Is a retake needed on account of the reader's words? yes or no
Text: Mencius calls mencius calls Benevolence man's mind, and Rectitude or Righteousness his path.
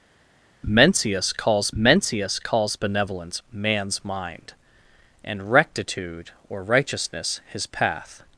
no